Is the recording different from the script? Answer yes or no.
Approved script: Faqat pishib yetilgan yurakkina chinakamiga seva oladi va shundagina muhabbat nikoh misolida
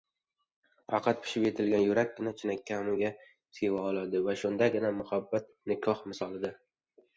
no